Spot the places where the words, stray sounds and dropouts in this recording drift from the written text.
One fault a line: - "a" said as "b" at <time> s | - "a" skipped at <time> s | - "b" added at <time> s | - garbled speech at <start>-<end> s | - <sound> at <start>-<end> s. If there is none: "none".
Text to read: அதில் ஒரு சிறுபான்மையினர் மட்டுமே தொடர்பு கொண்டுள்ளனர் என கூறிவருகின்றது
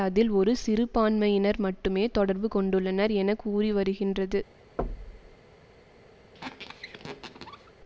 - thud at 4.8-5.4 s
- squeak at 6.3-7.7 s